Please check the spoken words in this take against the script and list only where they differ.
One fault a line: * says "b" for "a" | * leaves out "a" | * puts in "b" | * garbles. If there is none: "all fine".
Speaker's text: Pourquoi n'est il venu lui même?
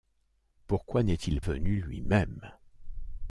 all fine